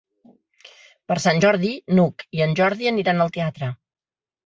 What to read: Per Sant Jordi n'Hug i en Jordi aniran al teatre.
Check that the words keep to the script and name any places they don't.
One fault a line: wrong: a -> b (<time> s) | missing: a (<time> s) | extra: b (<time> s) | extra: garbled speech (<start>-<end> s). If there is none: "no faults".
no faults